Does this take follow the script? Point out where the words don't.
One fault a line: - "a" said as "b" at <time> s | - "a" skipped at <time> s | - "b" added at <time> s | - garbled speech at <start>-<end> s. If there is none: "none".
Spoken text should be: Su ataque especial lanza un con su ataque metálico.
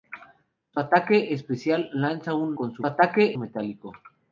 none